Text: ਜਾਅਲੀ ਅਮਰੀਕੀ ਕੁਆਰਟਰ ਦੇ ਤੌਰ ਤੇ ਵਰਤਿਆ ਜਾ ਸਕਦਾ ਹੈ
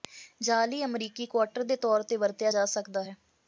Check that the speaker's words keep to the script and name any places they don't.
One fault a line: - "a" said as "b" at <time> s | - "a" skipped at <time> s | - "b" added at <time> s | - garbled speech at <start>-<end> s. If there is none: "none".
none